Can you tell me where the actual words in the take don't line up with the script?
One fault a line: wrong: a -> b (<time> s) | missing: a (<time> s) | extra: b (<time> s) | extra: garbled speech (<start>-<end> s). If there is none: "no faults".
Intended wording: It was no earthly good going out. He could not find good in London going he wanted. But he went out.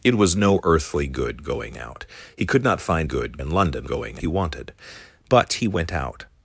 no faults